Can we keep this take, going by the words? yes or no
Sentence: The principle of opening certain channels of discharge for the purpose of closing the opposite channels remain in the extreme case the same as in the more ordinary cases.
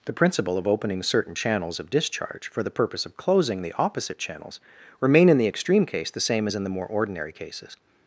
yes